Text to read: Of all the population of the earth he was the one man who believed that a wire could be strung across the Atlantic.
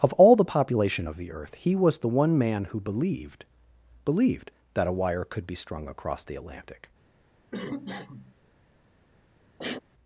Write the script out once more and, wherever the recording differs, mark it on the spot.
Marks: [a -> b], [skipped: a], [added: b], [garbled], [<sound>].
Of all the population of the earth he was the one man who believed [added: believed] that a wire could be strung across the Atlantic. [cough] [sniff]